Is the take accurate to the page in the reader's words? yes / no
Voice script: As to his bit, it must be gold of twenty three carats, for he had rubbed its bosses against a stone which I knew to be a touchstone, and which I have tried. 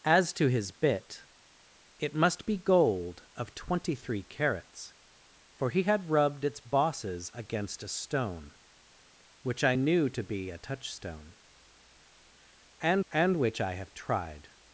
no